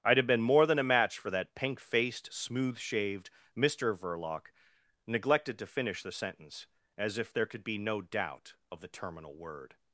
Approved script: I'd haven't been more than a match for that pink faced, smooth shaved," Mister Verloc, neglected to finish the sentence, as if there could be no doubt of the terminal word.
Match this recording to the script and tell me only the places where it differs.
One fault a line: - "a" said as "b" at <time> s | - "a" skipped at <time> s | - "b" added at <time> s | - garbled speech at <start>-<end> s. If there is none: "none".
- "haven't" said as "have" at 0.2 s